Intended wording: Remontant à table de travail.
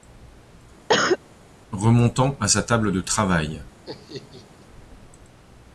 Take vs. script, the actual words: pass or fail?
fail